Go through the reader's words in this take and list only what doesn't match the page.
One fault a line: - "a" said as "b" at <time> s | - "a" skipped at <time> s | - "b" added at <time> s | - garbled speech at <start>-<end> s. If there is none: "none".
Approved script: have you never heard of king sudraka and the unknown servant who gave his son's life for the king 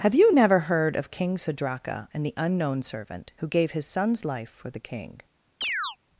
none